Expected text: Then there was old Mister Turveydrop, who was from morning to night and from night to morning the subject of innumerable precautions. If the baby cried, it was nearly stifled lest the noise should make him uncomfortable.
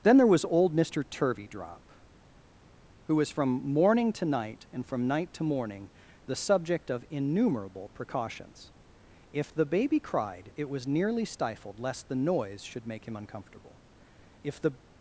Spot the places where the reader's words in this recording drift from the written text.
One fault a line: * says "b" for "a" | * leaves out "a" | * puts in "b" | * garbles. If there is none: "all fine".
* puts in "If the"